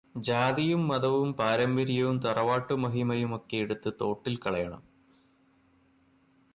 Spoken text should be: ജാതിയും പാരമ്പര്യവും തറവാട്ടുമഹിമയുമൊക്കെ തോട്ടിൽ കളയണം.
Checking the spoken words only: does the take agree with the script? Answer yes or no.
no